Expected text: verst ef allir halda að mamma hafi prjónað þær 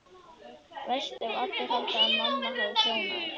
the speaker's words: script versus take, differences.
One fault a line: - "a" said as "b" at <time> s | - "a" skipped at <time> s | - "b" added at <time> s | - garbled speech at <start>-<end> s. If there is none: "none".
none